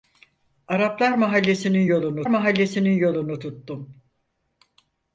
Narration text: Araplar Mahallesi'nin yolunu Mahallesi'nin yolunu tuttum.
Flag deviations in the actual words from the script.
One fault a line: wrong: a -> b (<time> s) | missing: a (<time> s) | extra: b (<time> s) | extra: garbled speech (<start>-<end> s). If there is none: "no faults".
no faults